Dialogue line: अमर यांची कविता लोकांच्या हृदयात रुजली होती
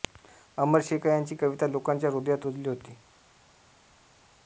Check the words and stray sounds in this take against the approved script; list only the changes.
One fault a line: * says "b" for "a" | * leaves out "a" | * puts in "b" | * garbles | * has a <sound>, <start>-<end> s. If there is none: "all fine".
* puts in "शेखा"